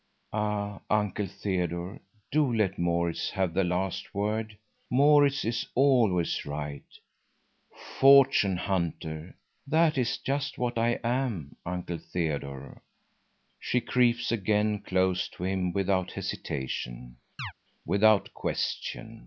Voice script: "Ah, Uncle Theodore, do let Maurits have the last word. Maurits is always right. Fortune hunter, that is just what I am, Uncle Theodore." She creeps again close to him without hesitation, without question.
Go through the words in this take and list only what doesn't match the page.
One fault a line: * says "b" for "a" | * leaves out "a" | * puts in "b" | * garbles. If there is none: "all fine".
all fine